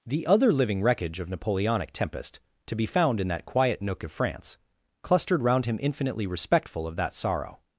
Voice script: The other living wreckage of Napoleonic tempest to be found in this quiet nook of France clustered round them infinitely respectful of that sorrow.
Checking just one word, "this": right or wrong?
wrong